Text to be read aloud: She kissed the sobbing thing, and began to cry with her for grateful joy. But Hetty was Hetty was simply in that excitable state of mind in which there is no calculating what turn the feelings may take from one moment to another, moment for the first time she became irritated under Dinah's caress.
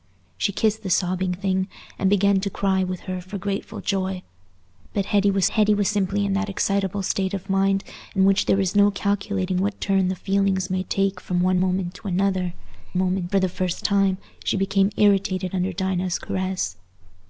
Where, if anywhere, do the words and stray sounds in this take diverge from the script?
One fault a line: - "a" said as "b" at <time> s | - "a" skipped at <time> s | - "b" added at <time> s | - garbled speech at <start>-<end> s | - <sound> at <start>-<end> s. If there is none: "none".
none